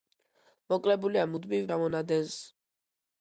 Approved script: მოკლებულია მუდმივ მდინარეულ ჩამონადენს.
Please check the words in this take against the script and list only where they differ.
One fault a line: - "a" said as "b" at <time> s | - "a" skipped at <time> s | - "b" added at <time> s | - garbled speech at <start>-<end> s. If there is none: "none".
- "მდინარეულ" skipped at 1.7 s